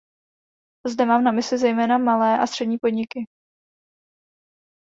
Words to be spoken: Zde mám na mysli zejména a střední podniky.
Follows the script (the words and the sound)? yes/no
no